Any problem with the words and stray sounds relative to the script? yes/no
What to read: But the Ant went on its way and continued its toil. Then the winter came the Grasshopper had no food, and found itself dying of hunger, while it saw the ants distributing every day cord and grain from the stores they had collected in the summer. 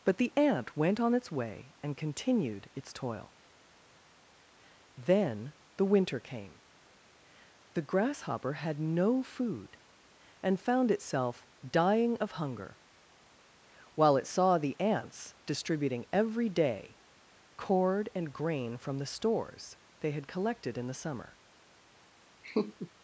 yes